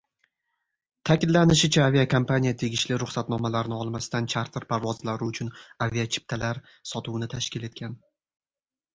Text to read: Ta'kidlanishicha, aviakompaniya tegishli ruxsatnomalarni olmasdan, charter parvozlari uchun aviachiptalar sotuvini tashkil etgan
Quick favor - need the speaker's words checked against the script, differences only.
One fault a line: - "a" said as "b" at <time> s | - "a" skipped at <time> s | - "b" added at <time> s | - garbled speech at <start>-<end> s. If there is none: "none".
none